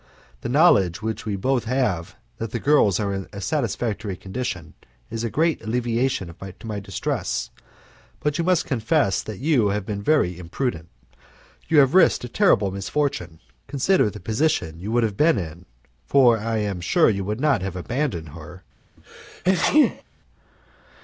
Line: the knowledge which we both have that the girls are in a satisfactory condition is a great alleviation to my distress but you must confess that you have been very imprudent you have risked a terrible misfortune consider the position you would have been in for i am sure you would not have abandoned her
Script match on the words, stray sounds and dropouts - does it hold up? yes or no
no